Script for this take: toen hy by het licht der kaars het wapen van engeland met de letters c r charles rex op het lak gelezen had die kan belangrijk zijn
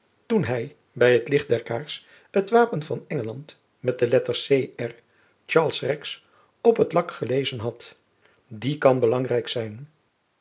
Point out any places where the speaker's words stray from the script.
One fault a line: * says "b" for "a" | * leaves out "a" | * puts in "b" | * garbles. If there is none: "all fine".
all fine